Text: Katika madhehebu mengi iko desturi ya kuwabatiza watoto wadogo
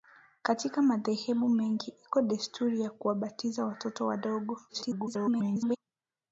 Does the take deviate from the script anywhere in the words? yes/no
yes